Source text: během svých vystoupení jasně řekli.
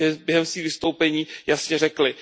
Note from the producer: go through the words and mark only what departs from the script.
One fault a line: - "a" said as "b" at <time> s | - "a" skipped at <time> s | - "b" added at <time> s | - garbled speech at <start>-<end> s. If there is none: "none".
none